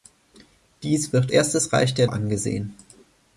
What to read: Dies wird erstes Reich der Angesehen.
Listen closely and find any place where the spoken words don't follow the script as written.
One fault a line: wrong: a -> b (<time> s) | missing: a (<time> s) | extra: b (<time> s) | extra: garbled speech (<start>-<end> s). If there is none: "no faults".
no faults